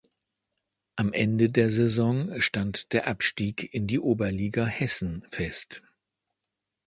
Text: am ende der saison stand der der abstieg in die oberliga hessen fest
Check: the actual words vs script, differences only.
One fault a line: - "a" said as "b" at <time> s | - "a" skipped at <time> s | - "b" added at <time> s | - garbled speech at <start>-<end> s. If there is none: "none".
- "der" skipped at 3.0 s